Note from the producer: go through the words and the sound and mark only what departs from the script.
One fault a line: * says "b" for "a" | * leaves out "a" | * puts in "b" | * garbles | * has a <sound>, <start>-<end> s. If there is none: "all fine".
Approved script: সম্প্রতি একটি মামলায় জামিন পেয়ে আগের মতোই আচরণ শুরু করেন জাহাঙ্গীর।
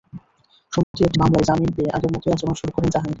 * has a dropout, 0.8-0.9 s